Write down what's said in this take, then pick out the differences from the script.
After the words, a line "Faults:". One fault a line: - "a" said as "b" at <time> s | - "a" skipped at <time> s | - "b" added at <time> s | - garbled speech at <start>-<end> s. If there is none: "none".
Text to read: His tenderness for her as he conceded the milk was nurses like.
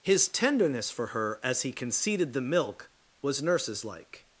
His tenderness for her as he conceded the milk was nurses like.
Faults:
none